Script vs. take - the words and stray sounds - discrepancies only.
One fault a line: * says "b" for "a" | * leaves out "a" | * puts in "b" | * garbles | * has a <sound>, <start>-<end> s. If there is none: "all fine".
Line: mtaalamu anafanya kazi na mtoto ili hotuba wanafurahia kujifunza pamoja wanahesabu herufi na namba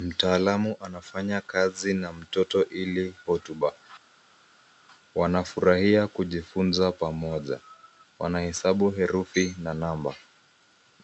all fine